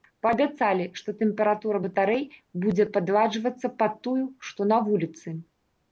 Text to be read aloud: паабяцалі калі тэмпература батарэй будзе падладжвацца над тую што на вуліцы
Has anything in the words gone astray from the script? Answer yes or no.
yes